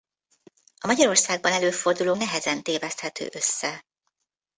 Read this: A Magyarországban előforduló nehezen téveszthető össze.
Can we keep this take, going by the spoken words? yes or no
yes